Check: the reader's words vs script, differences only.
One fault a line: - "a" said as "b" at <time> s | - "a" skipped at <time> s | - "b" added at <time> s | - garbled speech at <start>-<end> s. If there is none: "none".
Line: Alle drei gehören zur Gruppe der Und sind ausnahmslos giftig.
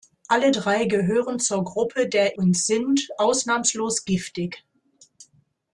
none